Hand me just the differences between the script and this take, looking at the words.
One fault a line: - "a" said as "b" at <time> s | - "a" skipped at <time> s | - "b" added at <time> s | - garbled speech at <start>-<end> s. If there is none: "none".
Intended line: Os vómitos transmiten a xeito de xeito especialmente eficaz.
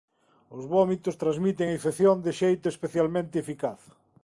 - "xeito" said as "infección" at 1.8 s